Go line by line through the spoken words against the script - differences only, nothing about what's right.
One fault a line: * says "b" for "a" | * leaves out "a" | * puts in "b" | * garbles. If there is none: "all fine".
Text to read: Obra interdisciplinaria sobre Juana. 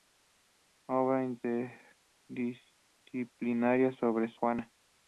all fine